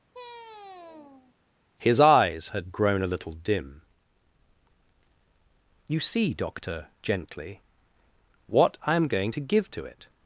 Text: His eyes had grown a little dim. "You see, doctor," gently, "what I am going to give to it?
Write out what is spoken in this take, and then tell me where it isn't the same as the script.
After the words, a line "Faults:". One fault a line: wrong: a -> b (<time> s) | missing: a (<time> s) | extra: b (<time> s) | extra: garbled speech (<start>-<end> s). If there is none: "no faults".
His eyes had grown a little dim. "You see, doctor," gently, "what I am going to give to it?
Faults:
no faults